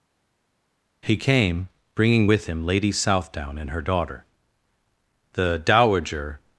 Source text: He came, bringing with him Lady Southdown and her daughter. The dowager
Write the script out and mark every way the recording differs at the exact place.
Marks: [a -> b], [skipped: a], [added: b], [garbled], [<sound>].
He came, bringing with him Lady Southdown and her daughter. The dowager